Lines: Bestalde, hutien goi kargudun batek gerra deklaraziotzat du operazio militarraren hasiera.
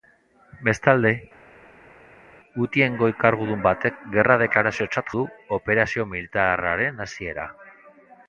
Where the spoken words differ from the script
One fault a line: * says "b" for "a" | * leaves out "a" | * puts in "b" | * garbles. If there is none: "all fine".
all fine